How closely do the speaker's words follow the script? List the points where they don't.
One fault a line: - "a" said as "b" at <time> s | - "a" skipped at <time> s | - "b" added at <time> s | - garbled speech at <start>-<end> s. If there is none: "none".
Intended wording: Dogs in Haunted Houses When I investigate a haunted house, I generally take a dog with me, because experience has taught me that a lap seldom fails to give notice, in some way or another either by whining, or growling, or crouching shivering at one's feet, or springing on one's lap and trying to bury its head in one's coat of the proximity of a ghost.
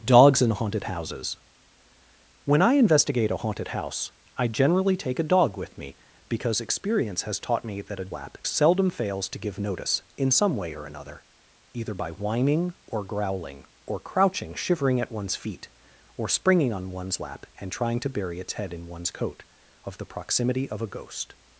none